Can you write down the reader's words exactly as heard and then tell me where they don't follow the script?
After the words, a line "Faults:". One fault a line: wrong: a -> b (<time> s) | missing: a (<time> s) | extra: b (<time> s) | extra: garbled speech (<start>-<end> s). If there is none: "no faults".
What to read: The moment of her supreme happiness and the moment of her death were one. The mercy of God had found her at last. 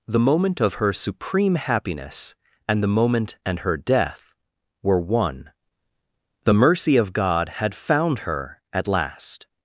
The moment of her supreme happiness and the moment and her death were one. The mercy of God had found her at last.
Faults:
wrong: of -> and (3.4 s)